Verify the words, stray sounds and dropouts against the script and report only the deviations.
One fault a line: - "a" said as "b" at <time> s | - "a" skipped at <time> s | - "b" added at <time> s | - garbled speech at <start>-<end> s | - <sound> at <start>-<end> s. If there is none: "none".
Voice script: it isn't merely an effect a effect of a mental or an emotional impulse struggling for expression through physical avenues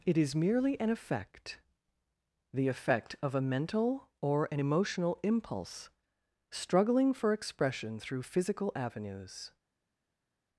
- "isn't" said as "is" at 0.2 s
- "a" said as "the" at 2.5 s